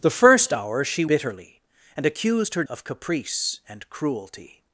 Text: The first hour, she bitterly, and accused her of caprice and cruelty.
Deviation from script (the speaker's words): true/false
false